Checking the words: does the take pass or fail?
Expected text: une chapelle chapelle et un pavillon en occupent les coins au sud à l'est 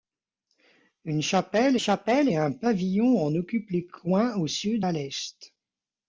pass